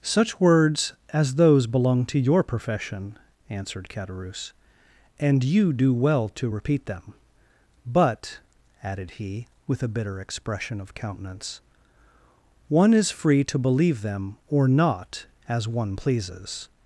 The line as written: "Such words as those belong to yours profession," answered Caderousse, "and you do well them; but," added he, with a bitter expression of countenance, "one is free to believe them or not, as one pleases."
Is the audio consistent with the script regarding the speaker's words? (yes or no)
no